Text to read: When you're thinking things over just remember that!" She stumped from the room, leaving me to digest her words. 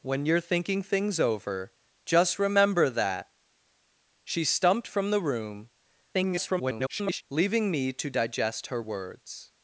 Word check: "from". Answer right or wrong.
right